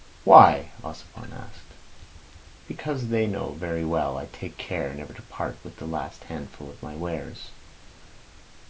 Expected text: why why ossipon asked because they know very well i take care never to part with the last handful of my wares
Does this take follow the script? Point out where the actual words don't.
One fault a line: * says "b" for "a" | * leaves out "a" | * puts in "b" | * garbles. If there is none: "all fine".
* leaves out "why"